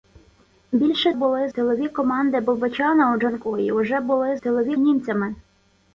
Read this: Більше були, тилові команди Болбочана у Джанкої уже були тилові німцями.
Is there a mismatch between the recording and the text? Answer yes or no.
no